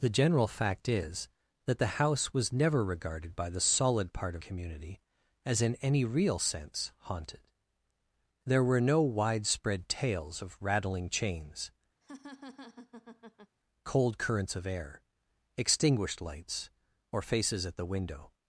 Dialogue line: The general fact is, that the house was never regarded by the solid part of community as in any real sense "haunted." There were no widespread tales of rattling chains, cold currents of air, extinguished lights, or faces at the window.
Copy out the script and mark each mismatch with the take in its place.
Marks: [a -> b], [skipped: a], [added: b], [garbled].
The general fact is, that the house was never regarded by the solid part of community as in any real sense "haunted." There were no widespread tales of rattling chains, cold currents of air, extinguished lights, or faces at the window.